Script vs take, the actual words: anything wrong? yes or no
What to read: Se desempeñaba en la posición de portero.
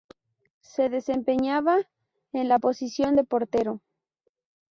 no